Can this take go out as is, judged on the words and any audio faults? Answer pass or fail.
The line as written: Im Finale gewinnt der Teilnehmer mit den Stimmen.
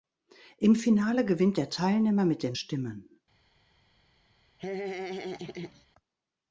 fail